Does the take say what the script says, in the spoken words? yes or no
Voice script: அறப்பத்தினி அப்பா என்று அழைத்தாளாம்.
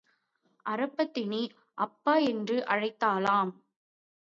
yes